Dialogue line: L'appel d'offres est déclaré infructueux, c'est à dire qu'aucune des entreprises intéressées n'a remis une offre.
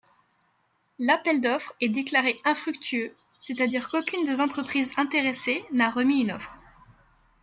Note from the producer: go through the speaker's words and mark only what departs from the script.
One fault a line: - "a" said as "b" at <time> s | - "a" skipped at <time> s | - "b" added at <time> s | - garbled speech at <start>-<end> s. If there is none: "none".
none